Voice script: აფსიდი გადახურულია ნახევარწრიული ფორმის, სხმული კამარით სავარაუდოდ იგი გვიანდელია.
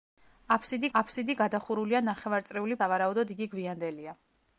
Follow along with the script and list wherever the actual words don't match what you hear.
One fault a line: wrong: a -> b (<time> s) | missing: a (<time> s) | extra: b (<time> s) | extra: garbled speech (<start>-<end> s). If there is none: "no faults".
extra: აფსიდი (1.0 s)
missing: ფორმის სხმული კამარით (2.8 s)